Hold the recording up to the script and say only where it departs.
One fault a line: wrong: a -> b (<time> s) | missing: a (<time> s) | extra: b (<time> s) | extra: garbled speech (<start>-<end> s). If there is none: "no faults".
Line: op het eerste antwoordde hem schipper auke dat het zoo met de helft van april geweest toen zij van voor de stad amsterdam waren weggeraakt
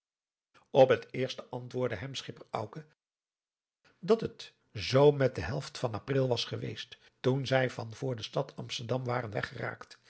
extra: was (6.3 s)